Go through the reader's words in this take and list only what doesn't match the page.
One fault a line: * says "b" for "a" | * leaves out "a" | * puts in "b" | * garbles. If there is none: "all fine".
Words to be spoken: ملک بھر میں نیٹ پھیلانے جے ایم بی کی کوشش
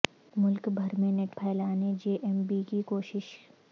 all fine